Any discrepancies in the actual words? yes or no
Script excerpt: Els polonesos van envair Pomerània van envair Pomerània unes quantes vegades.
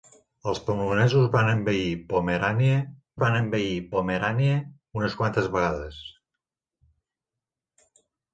no